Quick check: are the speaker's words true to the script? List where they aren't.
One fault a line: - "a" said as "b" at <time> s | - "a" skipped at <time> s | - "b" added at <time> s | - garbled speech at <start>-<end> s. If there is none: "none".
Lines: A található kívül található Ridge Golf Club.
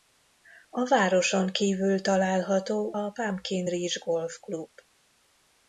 - "található" said as "városon" at 0.9 s
- "a Pumpkin" added at 2.9 s